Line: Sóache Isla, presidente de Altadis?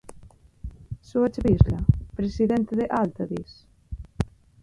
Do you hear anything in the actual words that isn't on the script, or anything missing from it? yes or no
no